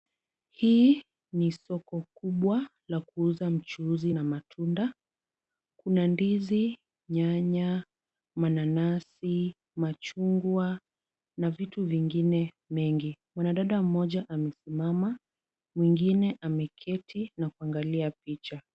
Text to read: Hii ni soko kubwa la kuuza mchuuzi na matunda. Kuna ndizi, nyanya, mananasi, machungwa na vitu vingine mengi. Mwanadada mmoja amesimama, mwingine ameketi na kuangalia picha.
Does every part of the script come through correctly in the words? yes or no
yes